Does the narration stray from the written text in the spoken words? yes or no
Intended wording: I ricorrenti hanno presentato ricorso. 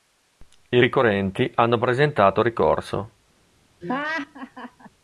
no